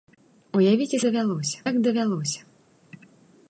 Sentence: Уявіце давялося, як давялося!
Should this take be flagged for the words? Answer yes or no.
no